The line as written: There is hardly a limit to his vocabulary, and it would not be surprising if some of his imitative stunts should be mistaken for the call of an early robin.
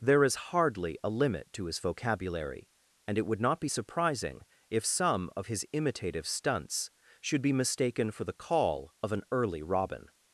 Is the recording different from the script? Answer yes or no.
no